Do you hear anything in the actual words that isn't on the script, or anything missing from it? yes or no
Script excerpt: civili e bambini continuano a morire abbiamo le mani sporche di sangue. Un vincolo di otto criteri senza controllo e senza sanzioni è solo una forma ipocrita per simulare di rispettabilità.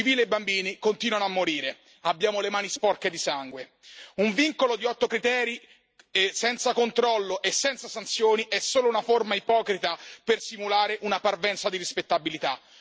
yes